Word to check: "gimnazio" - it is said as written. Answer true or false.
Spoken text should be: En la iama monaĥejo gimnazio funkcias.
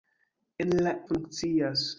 false